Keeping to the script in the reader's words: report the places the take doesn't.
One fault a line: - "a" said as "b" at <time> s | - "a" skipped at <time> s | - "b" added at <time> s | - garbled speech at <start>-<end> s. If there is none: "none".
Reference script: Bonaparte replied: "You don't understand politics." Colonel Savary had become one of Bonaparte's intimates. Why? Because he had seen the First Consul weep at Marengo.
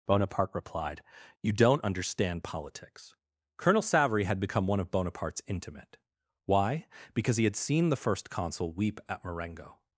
- "intimates" said as "intimate" at 5.5 s